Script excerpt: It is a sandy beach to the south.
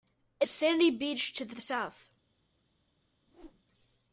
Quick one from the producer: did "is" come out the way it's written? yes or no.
no